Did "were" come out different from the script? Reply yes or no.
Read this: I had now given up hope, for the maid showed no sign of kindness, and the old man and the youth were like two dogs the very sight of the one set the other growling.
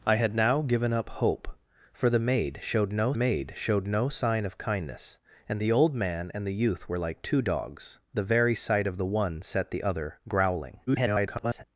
no